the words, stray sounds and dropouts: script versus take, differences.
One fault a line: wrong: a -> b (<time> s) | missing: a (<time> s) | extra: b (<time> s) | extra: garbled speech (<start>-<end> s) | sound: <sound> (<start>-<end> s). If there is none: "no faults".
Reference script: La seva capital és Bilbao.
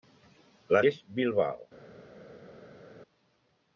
missing: seva capital (0.8 s)